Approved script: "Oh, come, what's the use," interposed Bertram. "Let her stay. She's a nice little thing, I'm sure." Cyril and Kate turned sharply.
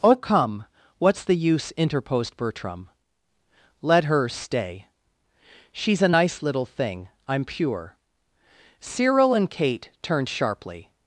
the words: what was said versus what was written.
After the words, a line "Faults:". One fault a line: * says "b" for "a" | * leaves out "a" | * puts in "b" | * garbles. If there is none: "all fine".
"Oh, come, what's the use," interposed Bertram. "Let her stay. She's a nice little thing, I'm pure." Cyril and Kate turned sharply.
Faults:
* says "pure" for "sure"